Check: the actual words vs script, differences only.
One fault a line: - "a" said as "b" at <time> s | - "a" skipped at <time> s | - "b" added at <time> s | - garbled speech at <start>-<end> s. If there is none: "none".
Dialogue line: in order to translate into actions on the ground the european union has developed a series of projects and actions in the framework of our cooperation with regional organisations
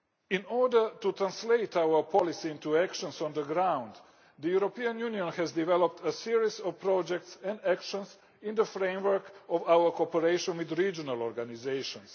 - "our policy" added at 1.8 s